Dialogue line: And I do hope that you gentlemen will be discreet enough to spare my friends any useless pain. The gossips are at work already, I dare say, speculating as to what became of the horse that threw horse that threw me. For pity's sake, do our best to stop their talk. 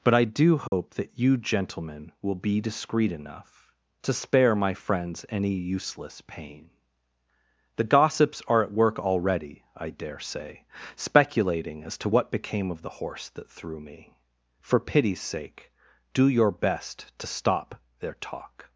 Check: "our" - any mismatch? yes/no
yes